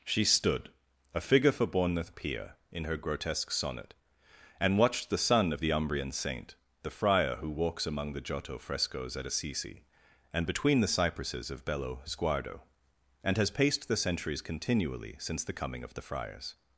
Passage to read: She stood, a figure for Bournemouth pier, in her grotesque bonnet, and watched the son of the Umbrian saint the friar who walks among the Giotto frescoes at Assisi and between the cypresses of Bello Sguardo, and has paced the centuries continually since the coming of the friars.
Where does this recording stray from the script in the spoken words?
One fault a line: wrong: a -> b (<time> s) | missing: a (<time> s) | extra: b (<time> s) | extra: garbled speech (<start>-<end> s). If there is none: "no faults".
wrong: bonnet -> sonnet (3.5 s)